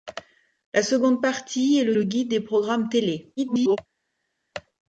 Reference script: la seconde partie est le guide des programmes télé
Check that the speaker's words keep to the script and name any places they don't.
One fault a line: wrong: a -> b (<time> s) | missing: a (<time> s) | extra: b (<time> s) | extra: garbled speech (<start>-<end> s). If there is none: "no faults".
extra: le (1.9 s)
extra: garbled speech (3.4-3.8 s)